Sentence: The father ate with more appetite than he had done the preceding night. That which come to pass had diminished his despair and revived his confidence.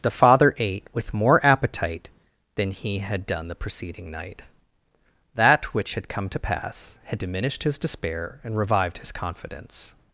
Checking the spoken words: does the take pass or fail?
fail